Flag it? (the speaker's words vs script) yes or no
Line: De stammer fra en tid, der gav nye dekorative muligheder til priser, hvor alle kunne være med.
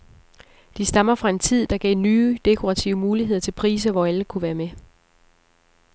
no